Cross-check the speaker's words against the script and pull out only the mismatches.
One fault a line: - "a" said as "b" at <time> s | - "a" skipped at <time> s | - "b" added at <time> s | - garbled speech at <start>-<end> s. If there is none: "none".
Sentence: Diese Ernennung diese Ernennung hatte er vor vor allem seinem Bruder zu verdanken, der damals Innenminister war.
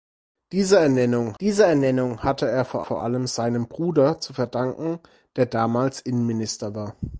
none